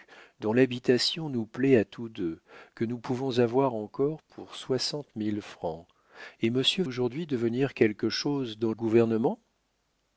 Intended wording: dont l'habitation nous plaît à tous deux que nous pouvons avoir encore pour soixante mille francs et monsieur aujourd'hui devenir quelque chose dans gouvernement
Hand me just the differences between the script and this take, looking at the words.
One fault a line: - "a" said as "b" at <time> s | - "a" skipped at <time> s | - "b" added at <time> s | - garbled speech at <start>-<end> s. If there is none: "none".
none